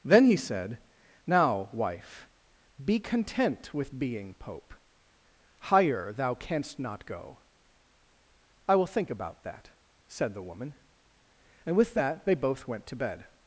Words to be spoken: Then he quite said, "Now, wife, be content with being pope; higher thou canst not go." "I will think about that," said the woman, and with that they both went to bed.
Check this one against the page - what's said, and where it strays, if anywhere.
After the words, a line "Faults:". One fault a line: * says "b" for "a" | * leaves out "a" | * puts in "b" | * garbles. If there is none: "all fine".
Then he said, "Now, wife, be content with being pope; higher thou canst not go." "I will think about that," said the woman, and with that they both went to bed.
Faults:
* leaves out "quite"